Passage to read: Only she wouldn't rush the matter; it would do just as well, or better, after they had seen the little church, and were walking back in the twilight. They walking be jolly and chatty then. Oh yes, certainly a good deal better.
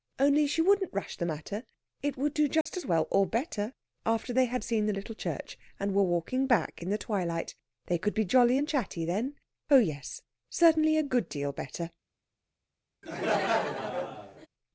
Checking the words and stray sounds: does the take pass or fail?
fail